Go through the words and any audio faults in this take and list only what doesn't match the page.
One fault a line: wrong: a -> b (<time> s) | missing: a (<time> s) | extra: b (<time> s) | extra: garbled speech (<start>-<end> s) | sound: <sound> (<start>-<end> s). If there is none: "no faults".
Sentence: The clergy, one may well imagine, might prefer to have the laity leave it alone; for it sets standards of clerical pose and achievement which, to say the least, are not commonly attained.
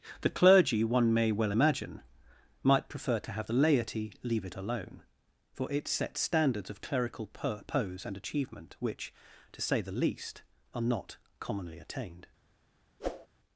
sound: whoosh (13.0-13.3 s)